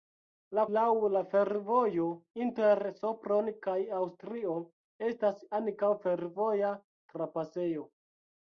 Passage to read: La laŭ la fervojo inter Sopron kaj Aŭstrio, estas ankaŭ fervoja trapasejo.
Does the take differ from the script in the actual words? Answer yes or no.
no